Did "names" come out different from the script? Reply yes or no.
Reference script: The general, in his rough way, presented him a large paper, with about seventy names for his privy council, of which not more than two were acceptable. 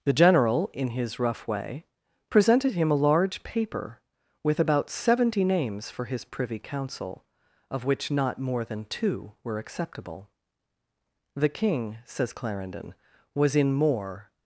no